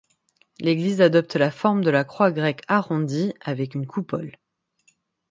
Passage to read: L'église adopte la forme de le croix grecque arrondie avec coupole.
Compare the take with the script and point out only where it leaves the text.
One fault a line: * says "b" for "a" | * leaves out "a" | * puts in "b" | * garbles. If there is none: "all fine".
* says "la" for "le"
* puts in "une"